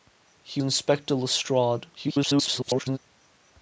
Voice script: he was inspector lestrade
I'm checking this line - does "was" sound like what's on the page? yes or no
no